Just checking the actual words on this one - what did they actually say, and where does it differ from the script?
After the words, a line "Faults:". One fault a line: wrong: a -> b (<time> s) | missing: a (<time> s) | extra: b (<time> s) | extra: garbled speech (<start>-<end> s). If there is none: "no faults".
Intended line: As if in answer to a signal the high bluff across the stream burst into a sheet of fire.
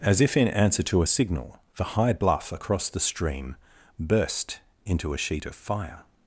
As if in answer to a signal the high bluff across the stream burst into a sheet of fire.
Faults:
no faults